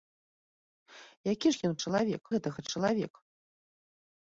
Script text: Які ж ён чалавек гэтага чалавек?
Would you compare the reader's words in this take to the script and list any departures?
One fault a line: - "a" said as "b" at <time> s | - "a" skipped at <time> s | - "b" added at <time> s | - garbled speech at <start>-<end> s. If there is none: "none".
none